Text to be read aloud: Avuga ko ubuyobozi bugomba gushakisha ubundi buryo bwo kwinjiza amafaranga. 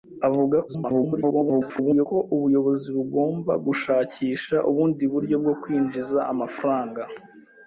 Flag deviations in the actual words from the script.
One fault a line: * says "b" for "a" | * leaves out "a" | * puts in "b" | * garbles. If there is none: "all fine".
* garbles